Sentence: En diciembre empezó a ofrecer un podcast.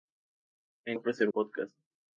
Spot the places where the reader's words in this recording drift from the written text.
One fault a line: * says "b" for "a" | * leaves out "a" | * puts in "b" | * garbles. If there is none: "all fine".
* leaves out "diciembre empezó"
* leaves out "un"